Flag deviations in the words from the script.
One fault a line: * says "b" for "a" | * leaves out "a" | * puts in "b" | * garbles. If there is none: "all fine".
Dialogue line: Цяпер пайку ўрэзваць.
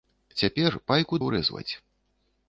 all fine